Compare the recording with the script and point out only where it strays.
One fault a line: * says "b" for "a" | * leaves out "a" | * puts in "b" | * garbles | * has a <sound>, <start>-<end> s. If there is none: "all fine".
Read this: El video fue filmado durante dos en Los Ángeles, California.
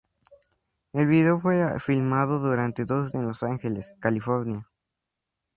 all fine